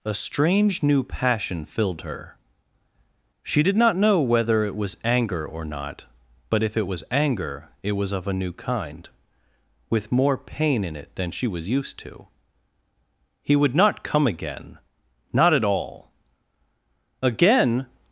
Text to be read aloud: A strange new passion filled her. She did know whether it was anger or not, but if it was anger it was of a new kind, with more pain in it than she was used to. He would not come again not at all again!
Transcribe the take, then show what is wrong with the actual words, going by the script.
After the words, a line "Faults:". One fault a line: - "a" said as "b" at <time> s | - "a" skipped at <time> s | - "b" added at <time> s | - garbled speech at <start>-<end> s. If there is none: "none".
A strange new passion filled her. She did not know whether it was anger or not, but if it was anger it was of a new kind, with more pain in it than she was used to. He would not come again not at all again!
Faults:
- "not" added at 3.7 s